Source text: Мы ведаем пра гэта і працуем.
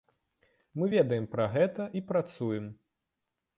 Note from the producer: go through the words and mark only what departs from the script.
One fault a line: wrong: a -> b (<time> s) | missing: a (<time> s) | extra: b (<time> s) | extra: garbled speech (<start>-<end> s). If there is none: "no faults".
no faults